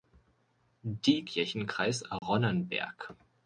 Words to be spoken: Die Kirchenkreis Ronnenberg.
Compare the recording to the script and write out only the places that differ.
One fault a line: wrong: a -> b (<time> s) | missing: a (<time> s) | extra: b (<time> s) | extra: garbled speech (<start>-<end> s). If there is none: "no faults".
no faults